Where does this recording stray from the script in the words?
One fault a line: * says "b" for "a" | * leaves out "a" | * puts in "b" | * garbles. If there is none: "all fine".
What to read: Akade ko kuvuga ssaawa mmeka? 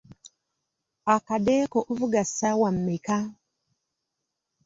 all fine